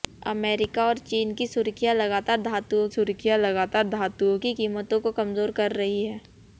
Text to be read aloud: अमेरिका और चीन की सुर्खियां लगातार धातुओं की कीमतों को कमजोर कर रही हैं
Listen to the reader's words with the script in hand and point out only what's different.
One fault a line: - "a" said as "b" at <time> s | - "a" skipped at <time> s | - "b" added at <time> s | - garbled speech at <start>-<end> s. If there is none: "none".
- "सुर्खियां लगातार धातुओं" added at 2.9 s